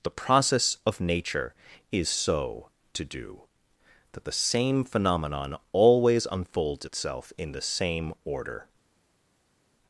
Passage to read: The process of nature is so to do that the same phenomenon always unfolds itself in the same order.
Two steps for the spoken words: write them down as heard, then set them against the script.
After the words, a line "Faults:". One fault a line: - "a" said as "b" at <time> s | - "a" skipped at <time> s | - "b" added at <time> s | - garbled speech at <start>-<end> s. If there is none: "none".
The process of nature is so to do that the same phenomenon always unfolds itself in the same order.
Faults:
none